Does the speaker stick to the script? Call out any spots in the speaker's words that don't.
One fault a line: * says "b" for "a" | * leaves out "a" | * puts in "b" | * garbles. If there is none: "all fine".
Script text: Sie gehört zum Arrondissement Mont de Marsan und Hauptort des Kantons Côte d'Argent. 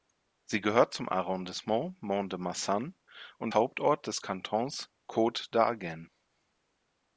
all fine